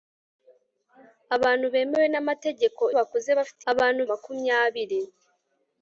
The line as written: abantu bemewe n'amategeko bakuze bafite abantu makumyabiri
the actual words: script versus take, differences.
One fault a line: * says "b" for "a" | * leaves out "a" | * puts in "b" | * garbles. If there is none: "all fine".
all fine